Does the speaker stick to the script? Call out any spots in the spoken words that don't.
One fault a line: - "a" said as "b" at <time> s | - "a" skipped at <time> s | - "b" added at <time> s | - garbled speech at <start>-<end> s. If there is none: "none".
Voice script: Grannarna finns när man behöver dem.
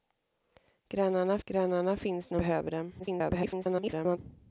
- "grannarna" added at 1.5 s
- "man" skipped at 2.4 s
- garbled speech at 3.0-4.2 s